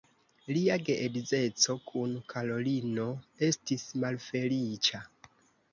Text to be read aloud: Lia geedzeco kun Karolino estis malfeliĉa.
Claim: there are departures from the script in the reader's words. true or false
false